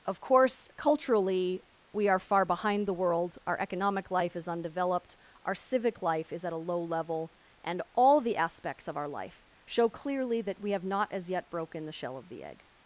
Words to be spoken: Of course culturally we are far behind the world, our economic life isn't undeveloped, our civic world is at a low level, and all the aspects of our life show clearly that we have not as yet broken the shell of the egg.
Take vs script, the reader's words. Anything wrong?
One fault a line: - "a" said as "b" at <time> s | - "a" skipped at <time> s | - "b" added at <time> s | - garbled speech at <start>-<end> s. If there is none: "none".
- "isn't" said as "is" at 4.3 s
- "world" said as "life" at 6.0 s